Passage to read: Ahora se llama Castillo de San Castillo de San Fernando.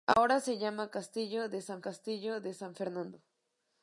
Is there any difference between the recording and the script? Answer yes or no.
no